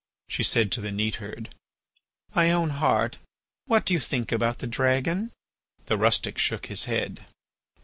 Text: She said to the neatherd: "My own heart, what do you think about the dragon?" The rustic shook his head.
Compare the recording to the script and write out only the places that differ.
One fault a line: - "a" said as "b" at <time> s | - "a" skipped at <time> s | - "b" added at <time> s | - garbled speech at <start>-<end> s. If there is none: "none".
none